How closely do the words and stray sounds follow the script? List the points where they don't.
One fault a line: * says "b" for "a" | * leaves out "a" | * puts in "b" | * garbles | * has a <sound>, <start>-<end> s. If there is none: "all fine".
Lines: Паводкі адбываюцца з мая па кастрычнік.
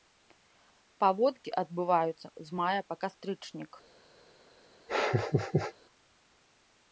* has a laugh, 4.9-5.7 s